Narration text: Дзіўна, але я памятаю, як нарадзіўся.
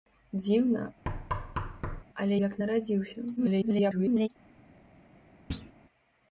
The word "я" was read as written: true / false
false